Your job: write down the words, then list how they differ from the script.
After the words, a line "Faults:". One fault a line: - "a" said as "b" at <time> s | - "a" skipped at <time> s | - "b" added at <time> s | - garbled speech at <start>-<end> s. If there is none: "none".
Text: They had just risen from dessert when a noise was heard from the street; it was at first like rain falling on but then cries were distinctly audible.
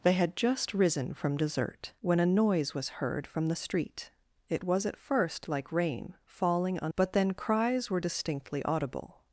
They had just risen from dessert when a noise was heard from the street; it was at first like rain falling on but then cries were distinctly audible.
Faults:
none